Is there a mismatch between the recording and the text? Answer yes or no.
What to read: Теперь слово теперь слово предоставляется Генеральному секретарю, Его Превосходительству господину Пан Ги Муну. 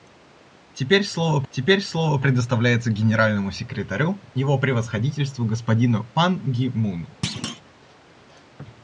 no